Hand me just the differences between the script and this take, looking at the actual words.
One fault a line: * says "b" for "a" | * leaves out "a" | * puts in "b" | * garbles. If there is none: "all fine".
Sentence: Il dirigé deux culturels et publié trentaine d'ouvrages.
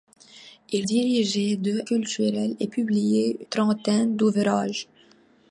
all fine